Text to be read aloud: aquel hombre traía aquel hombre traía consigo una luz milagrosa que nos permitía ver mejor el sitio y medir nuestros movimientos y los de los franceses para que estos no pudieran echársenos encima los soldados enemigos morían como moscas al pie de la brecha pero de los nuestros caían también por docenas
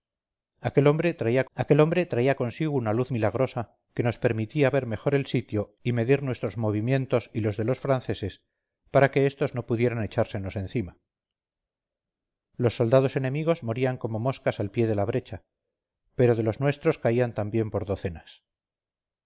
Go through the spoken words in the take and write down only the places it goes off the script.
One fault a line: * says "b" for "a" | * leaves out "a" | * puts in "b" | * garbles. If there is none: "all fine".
all fine